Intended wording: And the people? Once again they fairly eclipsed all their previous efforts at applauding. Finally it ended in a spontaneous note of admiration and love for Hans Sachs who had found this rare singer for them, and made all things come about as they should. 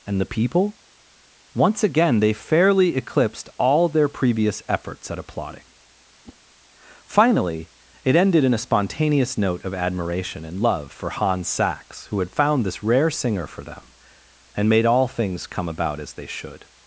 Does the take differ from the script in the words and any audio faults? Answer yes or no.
yes